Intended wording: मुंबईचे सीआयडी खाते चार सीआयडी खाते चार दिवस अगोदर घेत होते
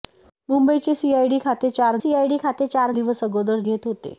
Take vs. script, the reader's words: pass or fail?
pass